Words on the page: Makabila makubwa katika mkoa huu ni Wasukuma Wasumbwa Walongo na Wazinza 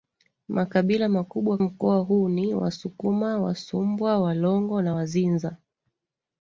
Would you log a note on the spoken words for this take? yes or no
yes